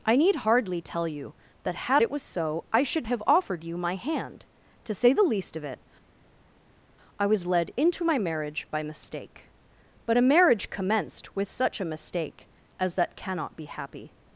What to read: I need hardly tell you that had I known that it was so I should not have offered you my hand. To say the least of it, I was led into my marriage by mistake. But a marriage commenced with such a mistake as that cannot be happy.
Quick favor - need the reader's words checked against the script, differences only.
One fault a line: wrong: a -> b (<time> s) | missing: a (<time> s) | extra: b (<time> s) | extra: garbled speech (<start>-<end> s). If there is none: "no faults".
missing: I known that (2.0 s)
missing: not (3.1 s)